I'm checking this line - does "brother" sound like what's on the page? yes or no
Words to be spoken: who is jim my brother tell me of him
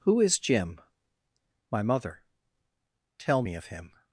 no